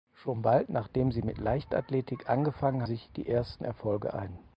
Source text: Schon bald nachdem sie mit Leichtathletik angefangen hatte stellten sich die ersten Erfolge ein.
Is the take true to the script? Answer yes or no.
no